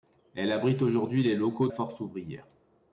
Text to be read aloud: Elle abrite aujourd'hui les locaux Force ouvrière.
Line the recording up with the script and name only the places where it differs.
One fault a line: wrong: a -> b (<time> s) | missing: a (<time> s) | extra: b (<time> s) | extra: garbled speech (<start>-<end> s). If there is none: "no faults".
no faults